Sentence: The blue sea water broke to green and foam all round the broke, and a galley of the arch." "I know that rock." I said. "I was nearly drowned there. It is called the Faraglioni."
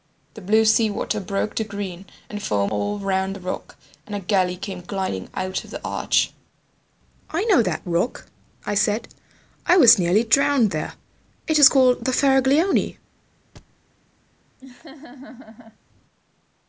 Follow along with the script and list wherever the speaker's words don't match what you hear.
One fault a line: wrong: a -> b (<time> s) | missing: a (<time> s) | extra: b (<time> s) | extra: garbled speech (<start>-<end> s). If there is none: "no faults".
wrong: broke -> rock (3.4 s)
extra: came gliding out (4.6 s)